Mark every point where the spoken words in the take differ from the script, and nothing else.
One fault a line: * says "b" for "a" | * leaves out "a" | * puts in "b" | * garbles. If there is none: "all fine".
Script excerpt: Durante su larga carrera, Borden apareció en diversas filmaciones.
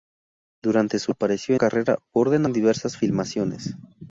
* says "apareció" for "larga"
* leaves out "apareció"